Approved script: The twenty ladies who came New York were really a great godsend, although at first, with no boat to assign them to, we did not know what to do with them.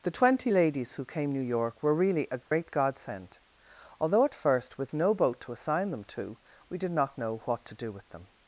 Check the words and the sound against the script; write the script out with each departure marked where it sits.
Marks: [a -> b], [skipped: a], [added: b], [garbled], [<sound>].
The twenty ladies who came New York were really a great [dropout] godsend, although at first, with no boat to assign them to, we did not know what to do with them.